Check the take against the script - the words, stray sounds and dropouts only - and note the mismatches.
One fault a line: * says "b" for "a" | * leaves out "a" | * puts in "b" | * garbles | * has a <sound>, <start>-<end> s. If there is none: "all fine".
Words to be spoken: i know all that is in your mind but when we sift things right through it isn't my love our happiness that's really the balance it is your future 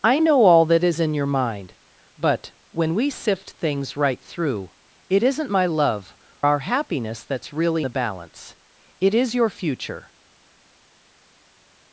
all fine